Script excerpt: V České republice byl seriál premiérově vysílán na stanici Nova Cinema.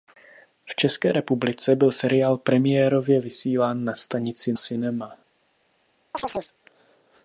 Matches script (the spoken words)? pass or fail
fail